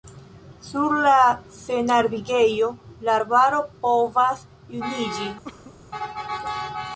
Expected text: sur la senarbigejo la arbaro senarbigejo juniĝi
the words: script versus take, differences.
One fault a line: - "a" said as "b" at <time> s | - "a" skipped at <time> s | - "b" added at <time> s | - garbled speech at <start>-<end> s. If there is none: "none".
- "senarbigejo" said as "povas" at 3.8 s